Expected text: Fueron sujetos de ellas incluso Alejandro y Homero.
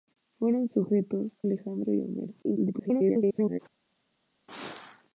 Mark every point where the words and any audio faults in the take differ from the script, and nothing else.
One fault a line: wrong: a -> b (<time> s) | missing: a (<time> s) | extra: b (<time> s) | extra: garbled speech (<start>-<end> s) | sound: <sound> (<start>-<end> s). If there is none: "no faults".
missing: de ellas incluso (1.3 s)
extra: garbled speech (2.4-3.6 s)